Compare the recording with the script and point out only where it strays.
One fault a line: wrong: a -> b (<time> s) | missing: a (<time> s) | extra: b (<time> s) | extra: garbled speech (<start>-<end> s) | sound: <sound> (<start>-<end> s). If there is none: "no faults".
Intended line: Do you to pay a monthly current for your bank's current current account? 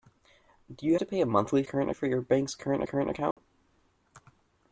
sound: dropout (3.3-3.4 s)